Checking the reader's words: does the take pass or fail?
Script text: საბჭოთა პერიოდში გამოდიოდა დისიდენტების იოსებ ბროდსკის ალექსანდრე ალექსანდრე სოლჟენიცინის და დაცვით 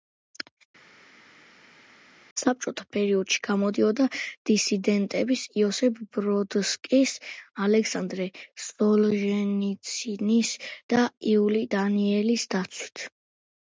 fail